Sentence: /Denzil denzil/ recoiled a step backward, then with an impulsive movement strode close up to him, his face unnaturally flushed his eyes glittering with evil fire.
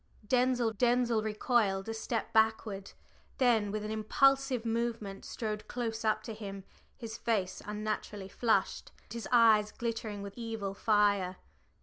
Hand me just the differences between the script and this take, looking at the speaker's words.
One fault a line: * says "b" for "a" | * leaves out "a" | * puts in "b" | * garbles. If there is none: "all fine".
all fine